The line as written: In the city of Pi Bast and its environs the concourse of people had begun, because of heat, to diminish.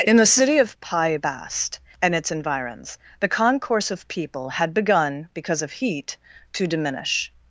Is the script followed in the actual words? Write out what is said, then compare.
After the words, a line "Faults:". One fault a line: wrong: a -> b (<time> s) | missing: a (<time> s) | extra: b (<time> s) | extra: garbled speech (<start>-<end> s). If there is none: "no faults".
In the city of Pi Bast and its environs the concourse of people had begun, because of heat, to diminish.
Faults:
no faults